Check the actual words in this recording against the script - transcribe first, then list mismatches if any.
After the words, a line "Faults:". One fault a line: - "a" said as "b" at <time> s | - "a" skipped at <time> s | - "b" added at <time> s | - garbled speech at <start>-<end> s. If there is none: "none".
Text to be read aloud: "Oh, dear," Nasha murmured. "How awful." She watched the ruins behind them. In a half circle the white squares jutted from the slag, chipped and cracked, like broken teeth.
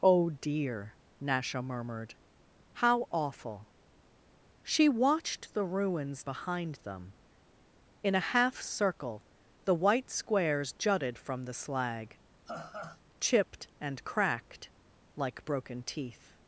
"Oh, dear," Nasha murmured. "How awful." She watched the ruins behind them. In a half circle the white squares jutted from the slag, chipped and cracked, like broken teeth.
Faults:
none